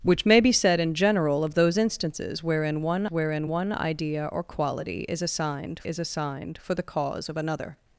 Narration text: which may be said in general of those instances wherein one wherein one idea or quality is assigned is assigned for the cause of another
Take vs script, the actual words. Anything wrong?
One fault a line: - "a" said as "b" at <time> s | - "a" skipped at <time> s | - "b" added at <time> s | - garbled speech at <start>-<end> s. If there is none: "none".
none